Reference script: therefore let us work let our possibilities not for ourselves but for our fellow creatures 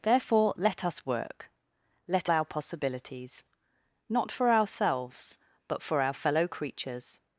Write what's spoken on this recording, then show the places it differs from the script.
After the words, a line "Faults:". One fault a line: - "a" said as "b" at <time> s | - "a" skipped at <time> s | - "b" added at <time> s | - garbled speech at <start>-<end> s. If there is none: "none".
therefore let us work let our possibilities not for ourselves but for our fellow creatures
Faults:
none